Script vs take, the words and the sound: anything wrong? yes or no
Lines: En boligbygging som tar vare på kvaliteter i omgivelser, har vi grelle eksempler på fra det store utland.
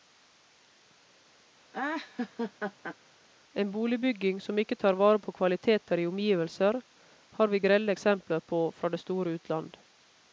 yes